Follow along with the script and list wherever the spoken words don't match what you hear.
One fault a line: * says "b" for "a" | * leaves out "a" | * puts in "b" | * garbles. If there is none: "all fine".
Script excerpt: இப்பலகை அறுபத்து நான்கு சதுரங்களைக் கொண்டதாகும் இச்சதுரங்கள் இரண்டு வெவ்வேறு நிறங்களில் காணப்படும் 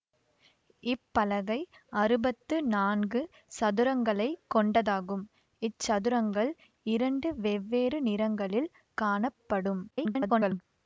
* garbles